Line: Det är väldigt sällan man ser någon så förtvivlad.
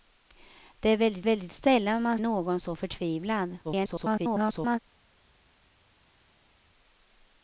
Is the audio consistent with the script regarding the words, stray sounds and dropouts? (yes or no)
no